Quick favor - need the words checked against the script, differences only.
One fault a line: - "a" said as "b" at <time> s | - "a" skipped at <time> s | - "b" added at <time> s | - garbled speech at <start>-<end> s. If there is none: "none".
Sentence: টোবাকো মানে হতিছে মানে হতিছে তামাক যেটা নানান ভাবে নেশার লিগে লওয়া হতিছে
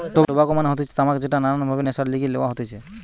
- "মানে হতিছে" skipped at 0.9 s